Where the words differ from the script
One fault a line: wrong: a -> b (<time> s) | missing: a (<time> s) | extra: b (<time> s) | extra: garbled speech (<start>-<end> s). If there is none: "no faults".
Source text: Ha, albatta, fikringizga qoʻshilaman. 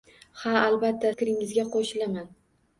no faults